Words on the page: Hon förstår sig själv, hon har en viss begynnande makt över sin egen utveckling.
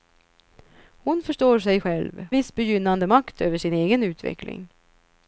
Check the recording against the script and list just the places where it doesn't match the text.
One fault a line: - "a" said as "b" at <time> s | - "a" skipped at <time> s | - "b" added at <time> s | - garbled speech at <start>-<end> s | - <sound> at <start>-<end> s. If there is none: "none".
- "hon har en" skipped at 2.3 s